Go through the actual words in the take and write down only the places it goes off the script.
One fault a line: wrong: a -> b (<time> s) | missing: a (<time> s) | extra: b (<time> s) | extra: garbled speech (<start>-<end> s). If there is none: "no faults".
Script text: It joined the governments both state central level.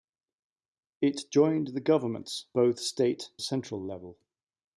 no faults